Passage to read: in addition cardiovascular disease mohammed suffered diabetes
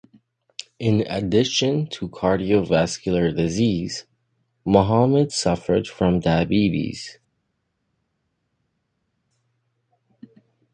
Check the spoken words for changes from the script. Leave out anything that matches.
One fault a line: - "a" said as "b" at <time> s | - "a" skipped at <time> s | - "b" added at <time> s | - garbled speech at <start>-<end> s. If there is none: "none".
- "to" added at 1.9 s
- "from" added at 5.9 s